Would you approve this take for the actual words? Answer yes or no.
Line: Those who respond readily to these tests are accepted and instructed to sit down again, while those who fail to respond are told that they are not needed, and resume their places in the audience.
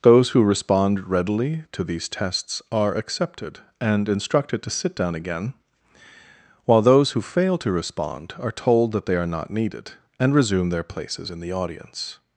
yes